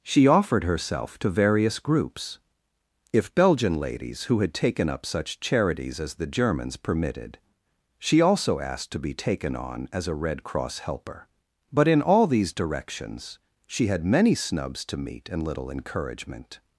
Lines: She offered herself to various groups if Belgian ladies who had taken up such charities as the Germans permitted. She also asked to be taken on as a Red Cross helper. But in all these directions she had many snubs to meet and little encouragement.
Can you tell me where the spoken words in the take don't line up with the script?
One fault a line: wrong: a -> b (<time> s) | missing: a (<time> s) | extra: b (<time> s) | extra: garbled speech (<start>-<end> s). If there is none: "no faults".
no faults